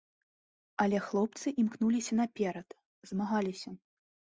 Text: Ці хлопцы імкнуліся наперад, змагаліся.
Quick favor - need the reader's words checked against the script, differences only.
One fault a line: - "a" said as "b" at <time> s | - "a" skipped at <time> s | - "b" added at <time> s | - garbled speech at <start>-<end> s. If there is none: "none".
- "Ці" said as "Але" at 0.8 s